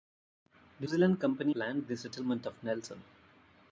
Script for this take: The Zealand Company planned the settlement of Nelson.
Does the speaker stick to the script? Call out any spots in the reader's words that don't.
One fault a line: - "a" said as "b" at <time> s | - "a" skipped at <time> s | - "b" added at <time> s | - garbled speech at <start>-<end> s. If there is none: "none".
none